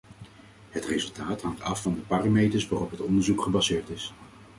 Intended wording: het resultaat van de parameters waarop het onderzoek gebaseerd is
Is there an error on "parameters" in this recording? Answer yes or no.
no